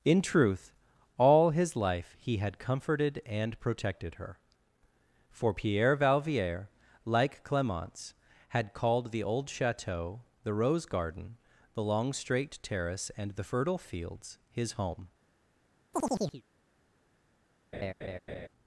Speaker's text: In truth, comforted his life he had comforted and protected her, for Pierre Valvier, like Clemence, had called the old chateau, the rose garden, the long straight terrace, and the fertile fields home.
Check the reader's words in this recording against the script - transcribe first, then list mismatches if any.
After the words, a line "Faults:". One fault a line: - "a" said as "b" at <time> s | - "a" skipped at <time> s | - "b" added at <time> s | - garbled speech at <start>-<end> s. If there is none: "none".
In truth, all his life he had comforted and protected her, for Pierre Valvier, like Clemence, had called the old chateau, the rose garden, the long straight terrace, and the fertile fields his home.
Faults:
- "comforted" said as "all" at 1.2 s
- "his" added at 14.5 s